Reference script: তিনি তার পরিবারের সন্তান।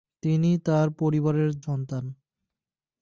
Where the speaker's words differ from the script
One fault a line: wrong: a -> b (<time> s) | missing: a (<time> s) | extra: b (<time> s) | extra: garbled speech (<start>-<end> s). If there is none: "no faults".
no faults